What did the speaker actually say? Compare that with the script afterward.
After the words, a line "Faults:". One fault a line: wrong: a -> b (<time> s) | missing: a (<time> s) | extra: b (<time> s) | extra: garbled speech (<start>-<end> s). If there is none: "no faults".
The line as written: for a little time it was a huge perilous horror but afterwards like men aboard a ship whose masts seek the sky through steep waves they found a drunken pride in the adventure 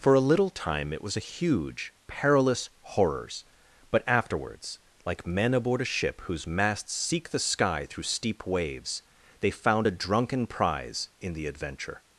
for a little time it was a huge perilous horrors but afterwards like men aboard a ship whose masts seek the sky through steep waves they found a drunken prize in the adventure
Faults:
wrong: horror -> horrors (2.8 s)
wrong: pride -> prize (10.5 s)